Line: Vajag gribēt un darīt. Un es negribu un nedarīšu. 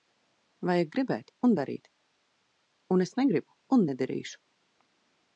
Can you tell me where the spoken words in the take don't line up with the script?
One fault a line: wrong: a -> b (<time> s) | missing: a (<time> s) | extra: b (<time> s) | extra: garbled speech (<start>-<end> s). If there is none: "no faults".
no faults